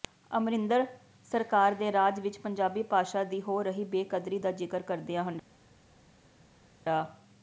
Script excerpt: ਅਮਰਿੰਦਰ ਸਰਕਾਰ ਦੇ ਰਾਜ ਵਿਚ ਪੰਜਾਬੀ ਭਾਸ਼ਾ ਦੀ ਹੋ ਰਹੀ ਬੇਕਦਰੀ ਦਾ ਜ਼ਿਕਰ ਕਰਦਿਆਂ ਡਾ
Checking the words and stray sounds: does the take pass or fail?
pass